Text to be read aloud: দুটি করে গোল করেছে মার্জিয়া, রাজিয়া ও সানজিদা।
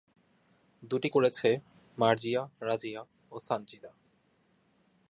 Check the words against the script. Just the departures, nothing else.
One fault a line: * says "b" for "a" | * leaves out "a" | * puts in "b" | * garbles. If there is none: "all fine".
* leaves out "করে গোল"